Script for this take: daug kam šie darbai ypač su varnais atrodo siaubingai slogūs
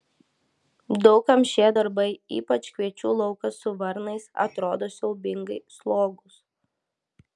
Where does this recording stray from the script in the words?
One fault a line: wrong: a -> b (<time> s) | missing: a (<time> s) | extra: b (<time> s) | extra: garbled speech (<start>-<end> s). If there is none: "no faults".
extra: kviečių laukas (2.8 s)